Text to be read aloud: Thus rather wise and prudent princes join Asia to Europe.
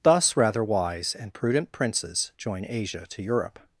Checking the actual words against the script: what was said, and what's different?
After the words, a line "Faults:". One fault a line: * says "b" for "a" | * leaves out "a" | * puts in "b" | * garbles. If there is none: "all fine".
Thus rather wise and prudent princes join Asia to Europe.
Faults:
all fine